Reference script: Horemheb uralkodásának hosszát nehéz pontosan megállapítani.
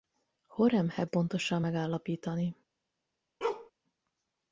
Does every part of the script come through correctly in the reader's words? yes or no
no